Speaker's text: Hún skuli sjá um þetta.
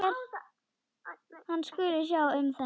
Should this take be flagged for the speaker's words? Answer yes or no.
yes